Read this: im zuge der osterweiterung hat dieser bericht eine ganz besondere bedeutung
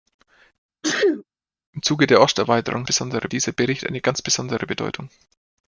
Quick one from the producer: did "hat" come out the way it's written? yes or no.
no